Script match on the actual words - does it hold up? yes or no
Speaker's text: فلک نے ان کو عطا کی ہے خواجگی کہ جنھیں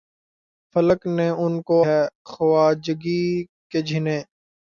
no